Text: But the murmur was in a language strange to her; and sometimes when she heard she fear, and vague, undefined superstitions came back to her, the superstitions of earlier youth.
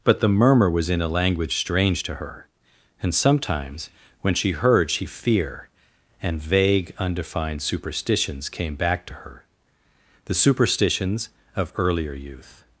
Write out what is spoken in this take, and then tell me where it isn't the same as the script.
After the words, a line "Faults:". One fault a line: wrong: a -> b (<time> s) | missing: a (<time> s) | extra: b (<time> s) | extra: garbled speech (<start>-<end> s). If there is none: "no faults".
But the murmur was in a language strange to her; and sometimes when she heard she fear, and vague, undefined superstitions came back to her, the superstitions of earlier youth.
Faults:
no faults